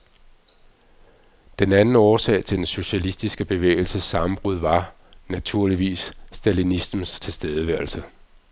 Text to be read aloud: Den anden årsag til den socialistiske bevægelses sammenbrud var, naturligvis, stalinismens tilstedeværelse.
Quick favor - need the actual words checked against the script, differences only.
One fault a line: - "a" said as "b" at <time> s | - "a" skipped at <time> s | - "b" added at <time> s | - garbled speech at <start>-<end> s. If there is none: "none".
none